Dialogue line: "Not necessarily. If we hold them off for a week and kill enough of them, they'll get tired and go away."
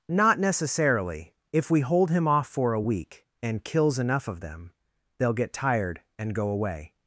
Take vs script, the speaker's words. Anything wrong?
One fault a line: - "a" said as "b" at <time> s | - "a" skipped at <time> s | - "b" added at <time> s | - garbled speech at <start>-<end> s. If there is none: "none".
- "them" said as "him" at 2.1 s
- "kill" said as "kills" at 3.6 s